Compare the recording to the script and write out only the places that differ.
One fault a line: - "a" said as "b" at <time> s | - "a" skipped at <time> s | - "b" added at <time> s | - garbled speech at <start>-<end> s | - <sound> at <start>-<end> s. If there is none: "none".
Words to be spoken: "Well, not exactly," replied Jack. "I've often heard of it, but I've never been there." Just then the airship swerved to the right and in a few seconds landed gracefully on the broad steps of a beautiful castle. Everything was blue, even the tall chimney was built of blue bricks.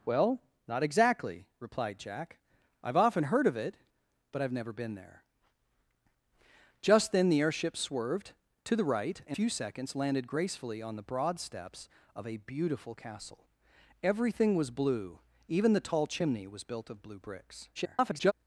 - "in a" skipped at 9.4 s
- garbled speech at 17.7-18.3 s